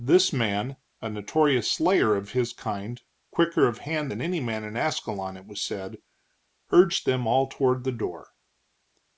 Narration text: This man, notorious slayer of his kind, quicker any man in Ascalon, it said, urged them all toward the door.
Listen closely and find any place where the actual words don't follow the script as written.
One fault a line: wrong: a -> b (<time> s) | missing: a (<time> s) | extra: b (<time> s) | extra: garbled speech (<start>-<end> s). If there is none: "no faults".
extra: a (1.0 s)
extra: of hand than (3.7 s)
extra: was (5.4 s)